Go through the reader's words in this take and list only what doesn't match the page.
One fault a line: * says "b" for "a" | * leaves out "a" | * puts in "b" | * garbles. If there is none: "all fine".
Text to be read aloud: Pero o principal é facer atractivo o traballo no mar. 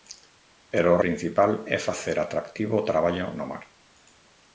all fine